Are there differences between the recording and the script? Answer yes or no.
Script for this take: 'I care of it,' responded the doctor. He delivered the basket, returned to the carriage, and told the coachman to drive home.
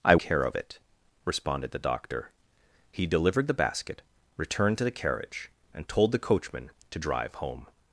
no